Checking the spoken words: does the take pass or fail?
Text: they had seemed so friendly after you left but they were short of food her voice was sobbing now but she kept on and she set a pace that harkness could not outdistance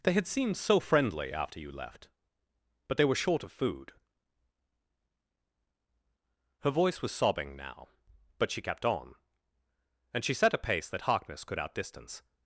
fail